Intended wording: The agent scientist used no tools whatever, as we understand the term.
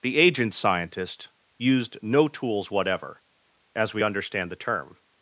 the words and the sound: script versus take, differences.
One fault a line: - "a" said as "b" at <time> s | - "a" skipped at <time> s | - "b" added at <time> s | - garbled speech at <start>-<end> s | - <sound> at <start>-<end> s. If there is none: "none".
none